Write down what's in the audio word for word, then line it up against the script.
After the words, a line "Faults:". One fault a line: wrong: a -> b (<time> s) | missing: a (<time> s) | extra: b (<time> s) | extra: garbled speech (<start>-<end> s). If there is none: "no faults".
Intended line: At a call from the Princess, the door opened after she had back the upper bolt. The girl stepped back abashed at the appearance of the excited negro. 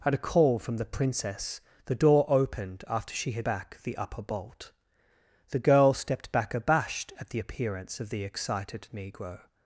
At a call from the Princess, the door opened after she had back the upper bolt. The girl stepped back abashed at the appearance of the excited negro.
Faults:
no faults